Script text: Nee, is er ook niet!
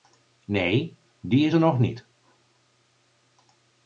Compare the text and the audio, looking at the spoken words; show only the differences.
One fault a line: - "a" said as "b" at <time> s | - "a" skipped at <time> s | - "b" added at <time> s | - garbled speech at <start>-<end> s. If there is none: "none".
- "die" added at 1.2 s
- "ook" said as "nog" at 1.6 s